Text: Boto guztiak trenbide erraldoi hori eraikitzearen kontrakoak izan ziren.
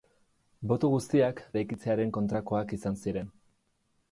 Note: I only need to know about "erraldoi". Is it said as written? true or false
false